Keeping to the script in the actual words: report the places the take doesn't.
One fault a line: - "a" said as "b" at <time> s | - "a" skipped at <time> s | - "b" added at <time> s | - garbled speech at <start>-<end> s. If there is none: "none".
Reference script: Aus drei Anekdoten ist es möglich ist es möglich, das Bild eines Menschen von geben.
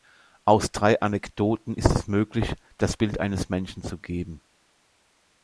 - "ist es möglich" skipped at 2.5 s
- "von" said as "zu" at 3.8 s